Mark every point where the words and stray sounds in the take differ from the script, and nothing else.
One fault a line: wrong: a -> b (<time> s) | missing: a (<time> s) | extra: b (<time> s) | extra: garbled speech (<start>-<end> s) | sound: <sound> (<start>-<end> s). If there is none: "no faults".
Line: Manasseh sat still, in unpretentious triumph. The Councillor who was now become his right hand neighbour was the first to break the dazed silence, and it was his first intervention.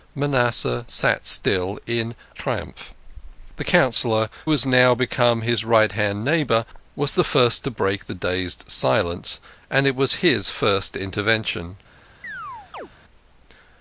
missing: unpretentious (2.1 s)
missing: who (4.3 s)
sound: chirp (12.2-12.9 s)